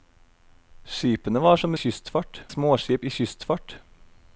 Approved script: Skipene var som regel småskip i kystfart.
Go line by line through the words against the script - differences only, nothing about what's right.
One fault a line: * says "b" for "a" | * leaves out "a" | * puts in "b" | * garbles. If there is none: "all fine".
* says "kystfart" for "regel"